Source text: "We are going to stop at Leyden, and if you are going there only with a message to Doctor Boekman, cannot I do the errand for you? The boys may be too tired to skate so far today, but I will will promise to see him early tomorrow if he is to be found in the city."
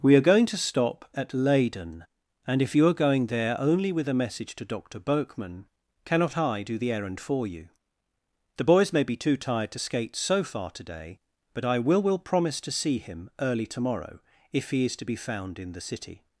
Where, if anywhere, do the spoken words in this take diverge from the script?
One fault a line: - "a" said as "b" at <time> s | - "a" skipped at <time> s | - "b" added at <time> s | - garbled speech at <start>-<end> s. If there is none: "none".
none